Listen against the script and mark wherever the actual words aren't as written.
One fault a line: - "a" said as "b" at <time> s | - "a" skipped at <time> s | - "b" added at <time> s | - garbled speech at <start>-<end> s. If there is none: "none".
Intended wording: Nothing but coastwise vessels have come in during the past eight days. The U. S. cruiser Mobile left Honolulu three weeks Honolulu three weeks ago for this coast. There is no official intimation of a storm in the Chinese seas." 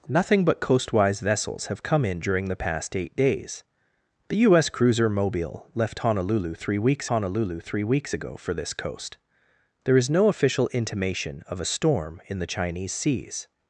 none